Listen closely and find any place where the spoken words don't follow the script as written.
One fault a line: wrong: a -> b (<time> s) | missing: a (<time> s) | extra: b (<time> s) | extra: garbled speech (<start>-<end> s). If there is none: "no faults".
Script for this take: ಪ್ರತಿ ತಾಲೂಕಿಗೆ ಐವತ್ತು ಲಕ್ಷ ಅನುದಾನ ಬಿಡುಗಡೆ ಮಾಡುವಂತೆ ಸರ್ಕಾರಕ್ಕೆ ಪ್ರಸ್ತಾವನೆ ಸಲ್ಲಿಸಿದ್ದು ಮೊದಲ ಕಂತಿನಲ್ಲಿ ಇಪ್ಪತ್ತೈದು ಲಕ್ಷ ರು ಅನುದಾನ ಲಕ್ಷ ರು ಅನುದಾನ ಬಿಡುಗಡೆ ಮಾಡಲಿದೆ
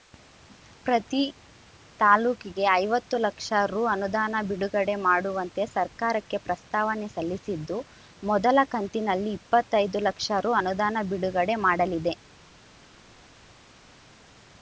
extra: ರು (3.7 s)
missing: ಲಕ್ಷ ರು ಅನುದಾನ (11.0 s)